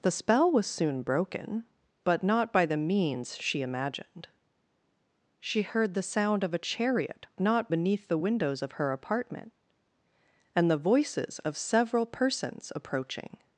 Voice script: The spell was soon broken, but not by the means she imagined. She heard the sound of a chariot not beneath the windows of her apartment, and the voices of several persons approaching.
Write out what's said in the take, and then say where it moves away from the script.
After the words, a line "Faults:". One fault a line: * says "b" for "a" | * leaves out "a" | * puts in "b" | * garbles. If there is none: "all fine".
The spell was soon broken, but not by the means she imagined. She heard the sound of a chariot not beneath the windows of her apartment, and the voices of several persons approaching.
Faults:
all fine